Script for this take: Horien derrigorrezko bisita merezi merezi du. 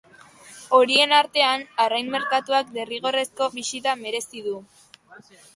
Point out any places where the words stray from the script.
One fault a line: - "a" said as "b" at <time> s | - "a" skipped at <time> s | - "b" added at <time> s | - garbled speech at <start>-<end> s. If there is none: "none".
- "artean arrain merkatuak" added at 1.2 s
- "merezi" skipped at 4.5 s